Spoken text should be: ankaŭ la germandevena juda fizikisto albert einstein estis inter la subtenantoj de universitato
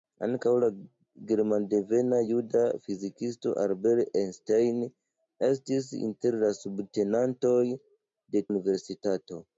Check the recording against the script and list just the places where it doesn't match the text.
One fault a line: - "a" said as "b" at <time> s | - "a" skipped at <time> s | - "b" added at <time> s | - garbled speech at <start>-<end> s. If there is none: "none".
none